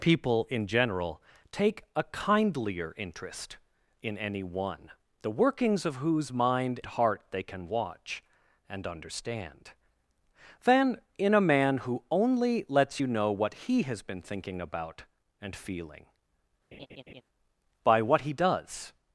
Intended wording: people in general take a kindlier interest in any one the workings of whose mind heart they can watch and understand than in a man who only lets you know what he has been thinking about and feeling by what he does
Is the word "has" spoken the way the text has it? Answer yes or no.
yes